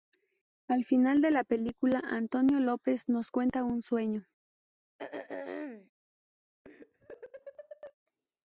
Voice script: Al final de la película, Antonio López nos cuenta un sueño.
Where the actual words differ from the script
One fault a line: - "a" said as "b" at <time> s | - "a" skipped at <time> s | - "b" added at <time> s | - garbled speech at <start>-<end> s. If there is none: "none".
none